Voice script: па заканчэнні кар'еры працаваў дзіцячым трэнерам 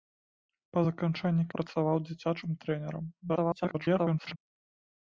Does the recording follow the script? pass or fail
fail